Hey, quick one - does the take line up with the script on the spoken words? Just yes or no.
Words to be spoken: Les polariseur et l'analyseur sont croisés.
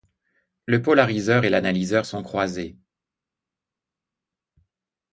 no